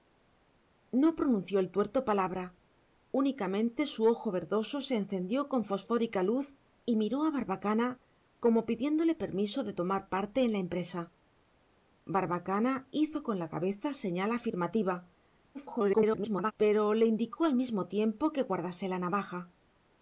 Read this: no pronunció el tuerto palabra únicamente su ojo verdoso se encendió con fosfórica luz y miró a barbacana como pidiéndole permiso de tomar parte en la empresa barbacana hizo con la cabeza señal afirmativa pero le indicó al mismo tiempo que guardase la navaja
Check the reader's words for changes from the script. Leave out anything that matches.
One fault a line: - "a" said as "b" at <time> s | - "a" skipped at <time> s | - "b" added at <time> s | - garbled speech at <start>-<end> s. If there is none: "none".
- garbled speech at 15.5-16.5 s